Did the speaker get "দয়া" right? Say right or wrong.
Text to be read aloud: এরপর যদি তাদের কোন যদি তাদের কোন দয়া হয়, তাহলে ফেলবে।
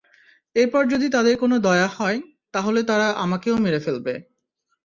wrong